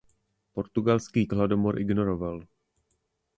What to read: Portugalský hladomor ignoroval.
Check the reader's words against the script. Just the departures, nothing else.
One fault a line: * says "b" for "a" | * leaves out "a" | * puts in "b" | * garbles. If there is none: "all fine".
all fine